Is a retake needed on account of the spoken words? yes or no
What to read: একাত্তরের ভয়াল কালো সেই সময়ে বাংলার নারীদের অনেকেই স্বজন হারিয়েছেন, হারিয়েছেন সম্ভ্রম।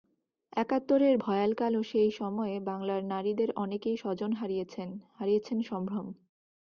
no